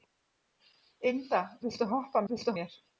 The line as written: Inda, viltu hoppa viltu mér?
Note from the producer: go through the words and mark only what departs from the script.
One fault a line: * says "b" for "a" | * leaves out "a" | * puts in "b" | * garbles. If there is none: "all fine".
all fine